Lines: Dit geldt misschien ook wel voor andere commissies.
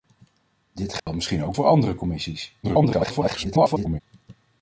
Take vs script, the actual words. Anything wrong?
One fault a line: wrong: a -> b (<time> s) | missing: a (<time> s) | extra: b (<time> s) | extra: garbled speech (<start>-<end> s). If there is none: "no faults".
missing: wel (1.6 s)
extra: garbled speech (2.6-4.0 s)